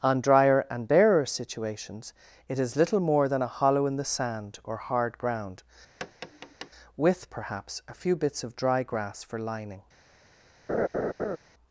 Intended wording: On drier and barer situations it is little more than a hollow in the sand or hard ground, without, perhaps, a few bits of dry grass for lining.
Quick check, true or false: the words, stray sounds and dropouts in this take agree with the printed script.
false